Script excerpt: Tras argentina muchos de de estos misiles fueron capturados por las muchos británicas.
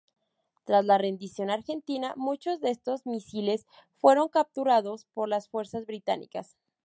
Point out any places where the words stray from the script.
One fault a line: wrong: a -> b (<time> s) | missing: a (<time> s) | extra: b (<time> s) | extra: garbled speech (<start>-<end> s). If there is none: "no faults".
extra: la rendición (0.8 s)
missing: de (2.7 s)
wrong: muchos -> fuerzas (5.5 s)